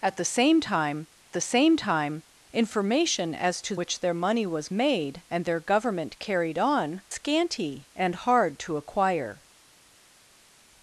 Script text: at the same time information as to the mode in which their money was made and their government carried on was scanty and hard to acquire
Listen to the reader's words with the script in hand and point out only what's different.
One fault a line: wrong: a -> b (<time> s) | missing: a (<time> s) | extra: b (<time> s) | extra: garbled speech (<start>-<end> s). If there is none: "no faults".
extra: the same time (1.3 s)
missing: the mode in (3.8 s)
missing: was (7.0 s)